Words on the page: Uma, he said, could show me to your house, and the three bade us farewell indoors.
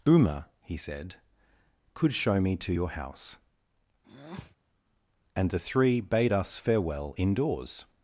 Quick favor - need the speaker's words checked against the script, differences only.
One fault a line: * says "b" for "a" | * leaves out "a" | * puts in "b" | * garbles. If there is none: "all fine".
all fine